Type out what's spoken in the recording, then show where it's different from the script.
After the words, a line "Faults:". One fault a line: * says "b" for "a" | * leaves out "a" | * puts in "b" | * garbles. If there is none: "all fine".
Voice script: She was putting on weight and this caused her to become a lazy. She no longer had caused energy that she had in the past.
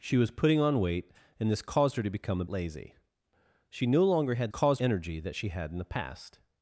She was putting on weight and this caused her to become a lazy. She no longer had caused energy that she had in the past.
Faults:
all fine